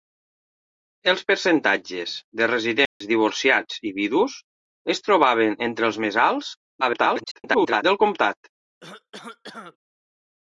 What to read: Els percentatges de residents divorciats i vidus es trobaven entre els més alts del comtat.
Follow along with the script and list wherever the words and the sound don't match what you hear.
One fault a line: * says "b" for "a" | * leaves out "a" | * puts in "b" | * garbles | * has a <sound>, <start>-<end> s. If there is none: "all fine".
* has a dropout, 2.9-3.0 s
* garbles
* has a cough, 8.8-9.8 s